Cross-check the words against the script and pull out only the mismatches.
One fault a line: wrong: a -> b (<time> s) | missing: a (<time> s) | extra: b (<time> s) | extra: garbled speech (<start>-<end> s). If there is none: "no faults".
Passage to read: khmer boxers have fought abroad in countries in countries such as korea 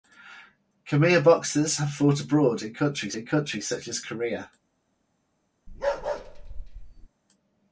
no faults